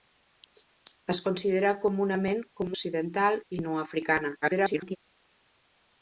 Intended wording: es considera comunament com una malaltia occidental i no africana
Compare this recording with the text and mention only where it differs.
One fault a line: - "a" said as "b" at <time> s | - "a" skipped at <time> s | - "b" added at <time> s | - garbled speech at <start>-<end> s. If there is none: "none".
- "una malaltia" skipped at 2.7 s
- garbled speech at 4.4-5.0 s